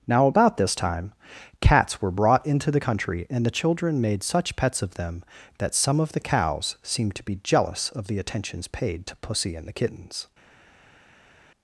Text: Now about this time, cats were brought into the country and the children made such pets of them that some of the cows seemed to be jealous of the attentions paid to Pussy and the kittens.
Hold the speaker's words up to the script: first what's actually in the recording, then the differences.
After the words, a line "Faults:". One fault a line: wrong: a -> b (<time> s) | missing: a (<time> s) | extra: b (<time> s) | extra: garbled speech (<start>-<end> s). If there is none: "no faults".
Now about this time, cats were brought into the country and the children made such pets of them that some of the cows seemed to be jealous of the attentions paid to Pussy and the kittens.
Faults:
no faults